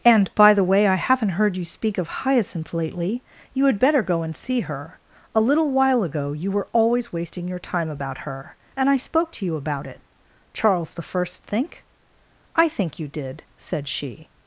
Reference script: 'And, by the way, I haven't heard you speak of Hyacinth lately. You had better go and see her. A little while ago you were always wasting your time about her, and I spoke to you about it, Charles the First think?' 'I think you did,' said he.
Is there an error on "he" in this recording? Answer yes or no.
yes